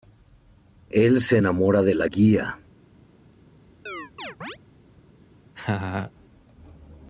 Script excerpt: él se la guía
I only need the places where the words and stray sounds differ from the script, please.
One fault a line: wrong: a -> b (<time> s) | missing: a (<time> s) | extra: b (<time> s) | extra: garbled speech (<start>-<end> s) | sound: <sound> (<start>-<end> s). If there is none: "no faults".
extra: enamora de (1.4 s)
sound: chirp (3.9-4.6 s)
sound: laugh (5.5-6.1 s)